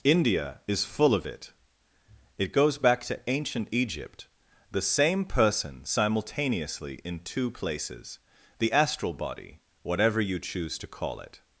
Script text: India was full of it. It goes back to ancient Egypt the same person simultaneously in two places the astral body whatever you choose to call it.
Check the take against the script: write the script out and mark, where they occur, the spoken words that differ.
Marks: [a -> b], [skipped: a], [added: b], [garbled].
India [was -> is] full of it. It goes back to ancient Egypt the same person simultaneously in two places the astral body whatever you choose to call it.